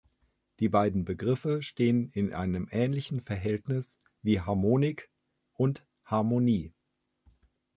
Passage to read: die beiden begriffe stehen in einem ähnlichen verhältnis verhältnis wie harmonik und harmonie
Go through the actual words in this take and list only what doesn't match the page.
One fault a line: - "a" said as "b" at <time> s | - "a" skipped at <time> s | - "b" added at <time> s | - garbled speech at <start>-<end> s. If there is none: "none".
- "verhältnis" skipped at 4.0 s